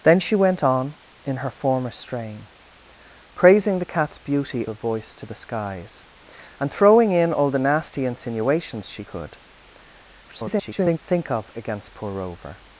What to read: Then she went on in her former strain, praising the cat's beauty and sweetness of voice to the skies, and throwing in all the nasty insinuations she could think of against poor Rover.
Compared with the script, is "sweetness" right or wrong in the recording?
wrong